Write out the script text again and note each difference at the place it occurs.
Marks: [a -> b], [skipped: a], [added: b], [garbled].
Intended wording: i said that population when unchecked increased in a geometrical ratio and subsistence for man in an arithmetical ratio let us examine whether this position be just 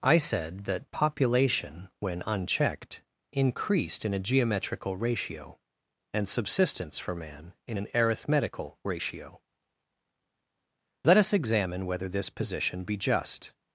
i said that population when unchecked increased in a geometrical ratio and subsistence for man in an arithmetical ratio let us examine whether this position be just